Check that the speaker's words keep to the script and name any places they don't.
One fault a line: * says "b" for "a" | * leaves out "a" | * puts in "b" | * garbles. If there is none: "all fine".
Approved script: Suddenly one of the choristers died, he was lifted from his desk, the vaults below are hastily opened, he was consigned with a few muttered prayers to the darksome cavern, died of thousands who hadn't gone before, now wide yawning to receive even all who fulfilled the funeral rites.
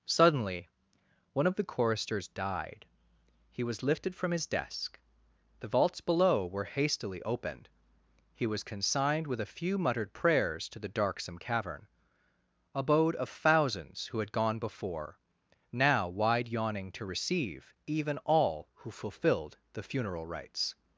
* says "were" for "are"
* says "abode" for "died"
* says "had" for "hadn't"